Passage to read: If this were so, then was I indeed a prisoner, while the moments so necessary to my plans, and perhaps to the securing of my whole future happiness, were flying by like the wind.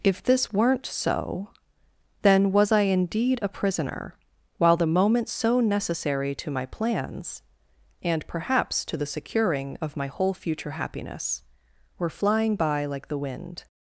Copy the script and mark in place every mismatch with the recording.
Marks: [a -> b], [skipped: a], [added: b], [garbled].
If this [were -> weren't] so, then was I indeed a prisoner, while the moments so necessary to my plans, and perhaps to the securing of my whole future happiness, were flying by like the wind.